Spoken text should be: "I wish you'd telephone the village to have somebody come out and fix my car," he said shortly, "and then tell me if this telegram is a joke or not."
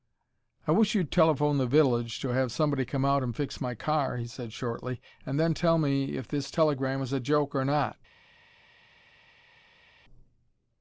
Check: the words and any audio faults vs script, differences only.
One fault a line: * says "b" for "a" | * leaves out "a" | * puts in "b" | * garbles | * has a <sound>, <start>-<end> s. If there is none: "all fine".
all fine